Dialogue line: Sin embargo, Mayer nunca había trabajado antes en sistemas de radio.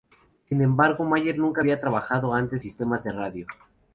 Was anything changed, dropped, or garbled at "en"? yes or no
yes